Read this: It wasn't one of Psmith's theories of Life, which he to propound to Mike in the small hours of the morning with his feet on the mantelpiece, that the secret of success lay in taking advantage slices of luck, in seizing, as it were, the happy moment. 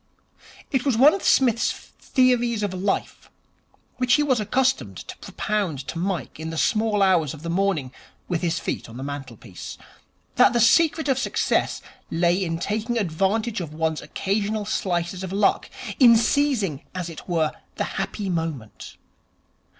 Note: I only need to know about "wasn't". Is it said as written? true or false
false